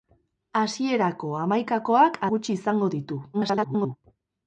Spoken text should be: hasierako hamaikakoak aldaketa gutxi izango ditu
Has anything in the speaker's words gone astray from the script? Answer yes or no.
yes